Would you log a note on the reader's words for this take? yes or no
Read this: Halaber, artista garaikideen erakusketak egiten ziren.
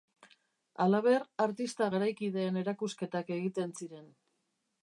no